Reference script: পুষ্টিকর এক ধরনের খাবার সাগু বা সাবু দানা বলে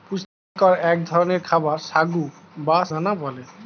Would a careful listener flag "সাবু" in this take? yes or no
yes